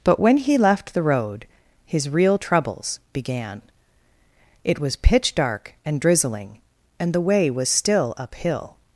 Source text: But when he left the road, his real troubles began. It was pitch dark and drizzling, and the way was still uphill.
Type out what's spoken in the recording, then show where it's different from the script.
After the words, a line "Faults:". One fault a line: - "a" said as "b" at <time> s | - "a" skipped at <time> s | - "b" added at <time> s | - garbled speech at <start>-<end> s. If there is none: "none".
But when he left the road, his real troubles began. It was pitch dark and drizzling, and the way was still uphill.
Faults:
none